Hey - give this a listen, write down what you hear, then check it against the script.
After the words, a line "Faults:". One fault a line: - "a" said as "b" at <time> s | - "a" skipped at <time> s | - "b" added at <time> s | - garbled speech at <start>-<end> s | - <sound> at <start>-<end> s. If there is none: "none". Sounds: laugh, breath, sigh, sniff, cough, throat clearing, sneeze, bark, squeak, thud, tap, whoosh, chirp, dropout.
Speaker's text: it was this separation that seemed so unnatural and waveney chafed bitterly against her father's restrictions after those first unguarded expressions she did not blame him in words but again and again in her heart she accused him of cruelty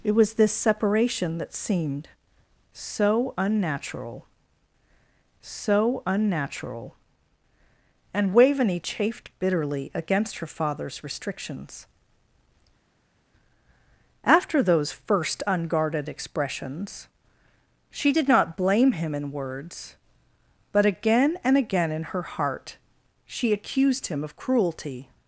it was this separation that seemed so unnatural so unnatural and waveney chafed bitterly against her father's restrictions after those first unguarded expressions she did not blame him in words but again and again in her heart she accused him of cruelty
Faults:
- "so unnatural" added at 5.4 s